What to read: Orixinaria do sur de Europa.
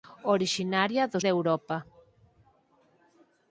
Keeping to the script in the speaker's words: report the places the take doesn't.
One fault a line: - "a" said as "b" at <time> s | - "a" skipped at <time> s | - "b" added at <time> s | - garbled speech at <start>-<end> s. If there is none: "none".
- "sur" skipped at 1.2 s